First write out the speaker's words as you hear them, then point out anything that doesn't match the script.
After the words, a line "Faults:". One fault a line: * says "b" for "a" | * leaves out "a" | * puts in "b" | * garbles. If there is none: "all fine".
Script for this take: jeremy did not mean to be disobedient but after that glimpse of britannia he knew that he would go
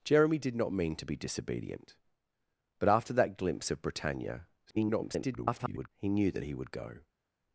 jeremy did not mean to be disobedient but after that glimpse of britannia [garbled] he knew that he would go
Faults:
* garbles